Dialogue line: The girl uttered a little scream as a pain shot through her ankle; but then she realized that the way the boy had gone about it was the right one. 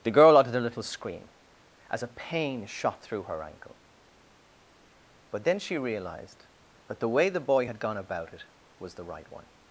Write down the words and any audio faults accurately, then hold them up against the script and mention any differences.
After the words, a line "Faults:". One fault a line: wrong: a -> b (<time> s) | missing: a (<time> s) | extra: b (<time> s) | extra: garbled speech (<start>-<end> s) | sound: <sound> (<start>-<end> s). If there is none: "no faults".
The girl uttered a little scream as a pain shot through her ankle; but then she realized that the way the boy had gone about it was the right one.
Faults:
no faults